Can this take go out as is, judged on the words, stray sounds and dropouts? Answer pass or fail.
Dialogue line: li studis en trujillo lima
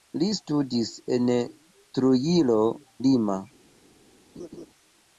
fail